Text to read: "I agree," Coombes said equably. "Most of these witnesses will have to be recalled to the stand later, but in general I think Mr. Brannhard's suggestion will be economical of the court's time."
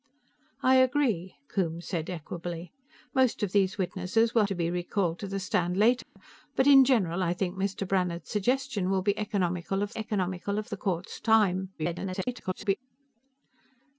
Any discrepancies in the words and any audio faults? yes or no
yes